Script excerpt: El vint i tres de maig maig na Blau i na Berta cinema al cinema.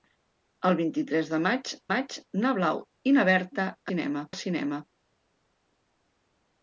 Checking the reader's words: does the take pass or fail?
pass